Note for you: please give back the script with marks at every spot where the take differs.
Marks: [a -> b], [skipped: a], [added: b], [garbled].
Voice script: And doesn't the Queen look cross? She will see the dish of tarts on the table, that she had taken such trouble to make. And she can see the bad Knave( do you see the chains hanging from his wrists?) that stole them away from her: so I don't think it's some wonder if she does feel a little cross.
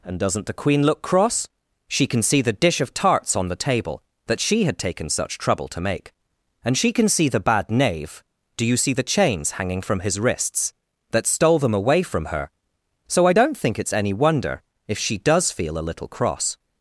And doesn't the Queen look cross? She [will -> can] see the dish of tarts on the table, that she had taken such trouble to make. And she can see the bad Knave( do you see the chains hanging from his wrists?) that stole them away from her: so I don't think it's [some -> any] wonder if she does feel a little cross.